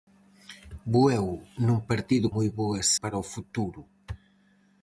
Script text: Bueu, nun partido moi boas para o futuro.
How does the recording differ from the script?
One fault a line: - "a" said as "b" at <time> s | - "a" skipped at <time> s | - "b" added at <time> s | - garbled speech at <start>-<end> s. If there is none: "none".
none